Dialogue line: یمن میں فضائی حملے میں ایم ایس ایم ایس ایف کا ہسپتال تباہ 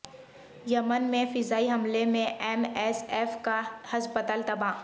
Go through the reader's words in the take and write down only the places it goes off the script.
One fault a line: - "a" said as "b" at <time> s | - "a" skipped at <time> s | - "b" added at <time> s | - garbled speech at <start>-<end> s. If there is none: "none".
- "ایم ایس" skipped at 3.0 s